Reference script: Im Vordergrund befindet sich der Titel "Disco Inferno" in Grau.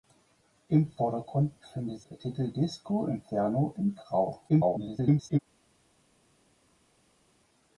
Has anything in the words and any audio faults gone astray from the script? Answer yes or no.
yes